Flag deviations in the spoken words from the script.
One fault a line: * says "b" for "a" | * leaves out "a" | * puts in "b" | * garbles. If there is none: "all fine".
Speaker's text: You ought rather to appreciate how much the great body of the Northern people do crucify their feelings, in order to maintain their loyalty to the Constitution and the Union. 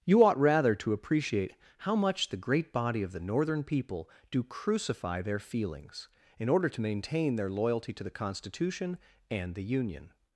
all fine